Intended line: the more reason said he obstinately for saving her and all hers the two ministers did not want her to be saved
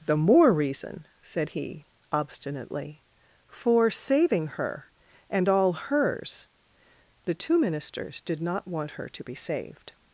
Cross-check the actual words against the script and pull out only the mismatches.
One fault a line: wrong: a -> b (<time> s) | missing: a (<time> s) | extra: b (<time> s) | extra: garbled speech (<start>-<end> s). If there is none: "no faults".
no faults